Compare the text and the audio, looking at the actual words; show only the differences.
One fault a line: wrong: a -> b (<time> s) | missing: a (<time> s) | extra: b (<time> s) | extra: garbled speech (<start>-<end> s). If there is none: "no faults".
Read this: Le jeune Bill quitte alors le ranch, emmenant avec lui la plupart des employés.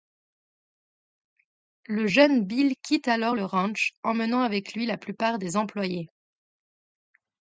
no faults